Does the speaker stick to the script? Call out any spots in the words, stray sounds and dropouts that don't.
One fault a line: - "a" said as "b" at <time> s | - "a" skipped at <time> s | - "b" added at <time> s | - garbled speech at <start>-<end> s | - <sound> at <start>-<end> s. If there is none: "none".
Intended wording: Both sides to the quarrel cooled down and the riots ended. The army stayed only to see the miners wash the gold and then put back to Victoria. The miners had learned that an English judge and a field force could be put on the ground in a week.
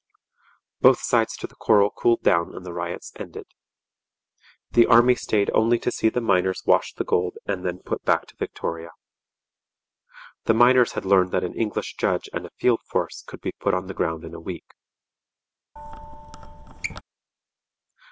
- squeak at 15.8-17.0 s